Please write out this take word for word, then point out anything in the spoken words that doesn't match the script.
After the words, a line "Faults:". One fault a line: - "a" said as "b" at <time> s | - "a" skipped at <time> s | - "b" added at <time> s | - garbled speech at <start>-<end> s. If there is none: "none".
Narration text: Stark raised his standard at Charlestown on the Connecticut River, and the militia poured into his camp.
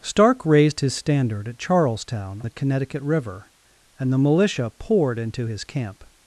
Stark raised his standard at Charlestown the Connecticut River, and the militia poured into his camp.
Faults:
- "on" skipped at 2.4 s